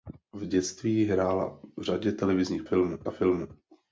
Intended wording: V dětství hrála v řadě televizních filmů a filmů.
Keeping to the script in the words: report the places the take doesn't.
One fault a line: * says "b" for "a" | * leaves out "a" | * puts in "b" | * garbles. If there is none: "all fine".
all fine